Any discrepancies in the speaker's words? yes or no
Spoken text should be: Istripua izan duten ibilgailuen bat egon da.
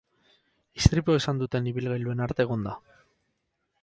no